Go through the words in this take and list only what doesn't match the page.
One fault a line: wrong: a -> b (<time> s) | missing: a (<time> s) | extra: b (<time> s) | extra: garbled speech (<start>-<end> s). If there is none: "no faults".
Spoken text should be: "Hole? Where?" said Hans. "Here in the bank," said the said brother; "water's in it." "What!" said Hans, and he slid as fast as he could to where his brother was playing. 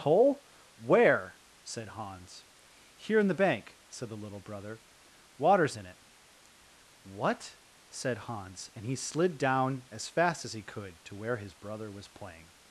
wrong: said -> little (4.2 s)
extra: down (9.4 s)